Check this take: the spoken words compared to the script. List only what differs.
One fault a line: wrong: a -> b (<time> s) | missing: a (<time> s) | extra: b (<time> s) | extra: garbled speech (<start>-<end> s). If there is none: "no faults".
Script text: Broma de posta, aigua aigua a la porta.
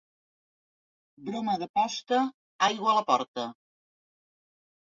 missing: aigua (2.9 s)